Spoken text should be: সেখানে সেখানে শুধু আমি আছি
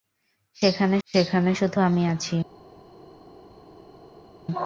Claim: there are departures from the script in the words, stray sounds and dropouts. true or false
false